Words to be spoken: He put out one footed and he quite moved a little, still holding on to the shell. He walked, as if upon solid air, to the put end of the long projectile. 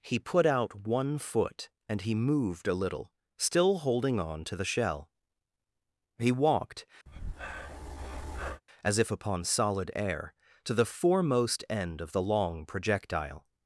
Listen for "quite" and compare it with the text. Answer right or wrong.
wrong